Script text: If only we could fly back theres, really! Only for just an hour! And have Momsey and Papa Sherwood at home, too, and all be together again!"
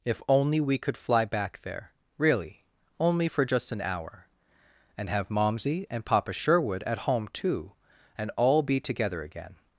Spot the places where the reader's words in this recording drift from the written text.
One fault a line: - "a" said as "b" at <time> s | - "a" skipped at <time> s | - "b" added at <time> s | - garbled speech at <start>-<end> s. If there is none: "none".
- "theres" said as "there" at 1.6 s